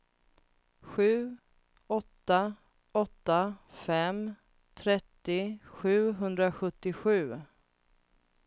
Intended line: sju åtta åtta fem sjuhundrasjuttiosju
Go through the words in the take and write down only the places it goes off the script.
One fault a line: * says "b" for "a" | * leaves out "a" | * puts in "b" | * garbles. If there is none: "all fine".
* puts in "trettio"